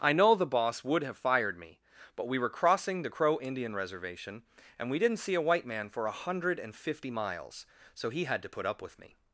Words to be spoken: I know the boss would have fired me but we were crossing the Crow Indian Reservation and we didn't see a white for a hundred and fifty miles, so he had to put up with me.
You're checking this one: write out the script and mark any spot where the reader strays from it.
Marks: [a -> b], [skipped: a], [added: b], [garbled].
I know the boss would have fired me but we were crossing the Crow Indian Reservation and we didn't see a white [added: man] for a hundred and fifty miles, so he had to put up with me.